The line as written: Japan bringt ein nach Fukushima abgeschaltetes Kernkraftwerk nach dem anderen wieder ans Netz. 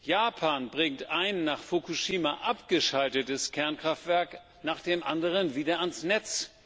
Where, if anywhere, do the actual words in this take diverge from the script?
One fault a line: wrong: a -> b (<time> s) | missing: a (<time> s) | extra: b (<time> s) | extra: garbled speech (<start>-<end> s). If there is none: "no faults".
no faults